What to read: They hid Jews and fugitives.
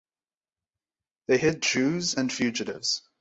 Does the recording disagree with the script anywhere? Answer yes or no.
no